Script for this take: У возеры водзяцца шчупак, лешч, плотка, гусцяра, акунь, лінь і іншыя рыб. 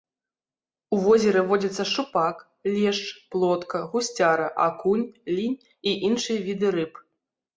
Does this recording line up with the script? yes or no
no